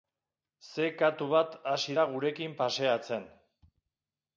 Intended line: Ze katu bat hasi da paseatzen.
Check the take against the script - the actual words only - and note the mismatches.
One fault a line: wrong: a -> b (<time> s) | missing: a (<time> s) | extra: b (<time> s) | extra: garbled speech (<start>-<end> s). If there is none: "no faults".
extra: gurekin (2.1 s)